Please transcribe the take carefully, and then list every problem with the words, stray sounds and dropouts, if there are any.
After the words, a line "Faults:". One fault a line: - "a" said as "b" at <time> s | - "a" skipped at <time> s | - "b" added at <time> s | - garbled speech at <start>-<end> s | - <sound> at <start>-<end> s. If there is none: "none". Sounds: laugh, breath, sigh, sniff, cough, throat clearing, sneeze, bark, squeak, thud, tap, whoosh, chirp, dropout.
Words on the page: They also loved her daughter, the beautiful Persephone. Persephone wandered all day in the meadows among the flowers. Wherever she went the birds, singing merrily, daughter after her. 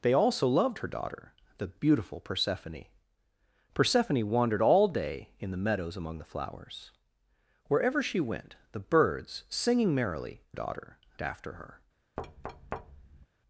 They also loved her daughter, the beautiful Persephone. Persephone wandered all day in the meadows among the flowers. Wherever she went the birds, singing merrily, daughter after her.
Faults:
- thud at 12.2-13.3 s